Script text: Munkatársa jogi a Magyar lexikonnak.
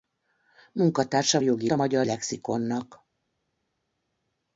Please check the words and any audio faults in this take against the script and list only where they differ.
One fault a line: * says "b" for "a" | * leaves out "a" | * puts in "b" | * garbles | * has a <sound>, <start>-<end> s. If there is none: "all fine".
all fine